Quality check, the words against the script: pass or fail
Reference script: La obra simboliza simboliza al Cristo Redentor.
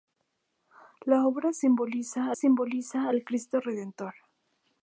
pass